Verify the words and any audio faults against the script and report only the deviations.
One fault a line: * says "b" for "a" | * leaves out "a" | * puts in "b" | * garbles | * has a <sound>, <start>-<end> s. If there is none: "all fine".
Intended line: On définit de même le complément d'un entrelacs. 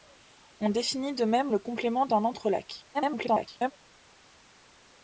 * garbles